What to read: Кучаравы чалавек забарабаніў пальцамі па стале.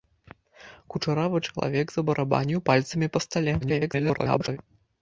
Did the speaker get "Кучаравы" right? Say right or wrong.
right